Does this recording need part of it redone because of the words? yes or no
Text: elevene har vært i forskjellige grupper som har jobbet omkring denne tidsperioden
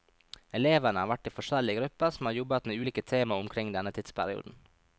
yes